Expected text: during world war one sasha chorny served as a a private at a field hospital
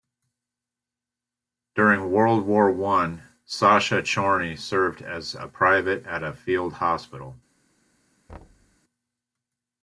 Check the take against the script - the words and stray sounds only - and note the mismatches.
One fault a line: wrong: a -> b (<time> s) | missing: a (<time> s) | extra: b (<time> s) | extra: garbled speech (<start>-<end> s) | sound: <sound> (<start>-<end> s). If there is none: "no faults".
missing: a (5.5 s)
sound: thud (8.3-8.8 s)